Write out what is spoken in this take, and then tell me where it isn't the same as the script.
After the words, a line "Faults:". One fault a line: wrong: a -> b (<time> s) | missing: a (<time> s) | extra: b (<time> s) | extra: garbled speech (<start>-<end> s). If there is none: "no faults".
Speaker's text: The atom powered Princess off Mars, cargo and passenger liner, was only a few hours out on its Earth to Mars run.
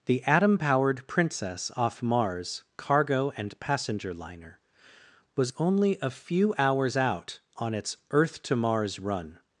The atom powered Princess off Mars, cargo and passenger liner, was only a few hours out on its Earth to Mars run.
Faults:
no faults